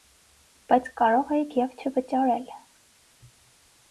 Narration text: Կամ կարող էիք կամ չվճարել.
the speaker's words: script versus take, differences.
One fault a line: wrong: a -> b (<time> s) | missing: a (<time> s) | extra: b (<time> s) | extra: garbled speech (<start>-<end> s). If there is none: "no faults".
wrong: Կամ -> Բայց (0.7 s)
wrong: կամ -> և (1.6 s)